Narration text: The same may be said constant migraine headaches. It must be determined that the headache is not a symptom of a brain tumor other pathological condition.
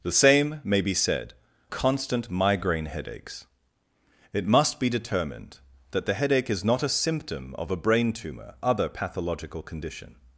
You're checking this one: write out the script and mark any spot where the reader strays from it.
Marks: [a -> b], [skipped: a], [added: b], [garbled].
The same may be said constant migraine headaches. It must be determined that the headache is not a symptom of a brain tumor other pathological condition.